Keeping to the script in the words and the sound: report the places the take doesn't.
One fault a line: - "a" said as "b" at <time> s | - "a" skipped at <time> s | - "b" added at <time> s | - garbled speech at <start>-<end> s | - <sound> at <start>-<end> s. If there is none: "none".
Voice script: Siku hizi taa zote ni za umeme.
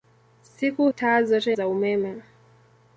- "hizi" skipped at 0.9 s
- "ni" skipped at 1.6 s